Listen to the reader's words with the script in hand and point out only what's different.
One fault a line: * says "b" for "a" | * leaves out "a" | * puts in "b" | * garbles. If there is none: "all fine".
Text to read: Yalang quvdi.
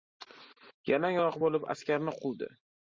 * puts in "oyoq bo‘lib askarni"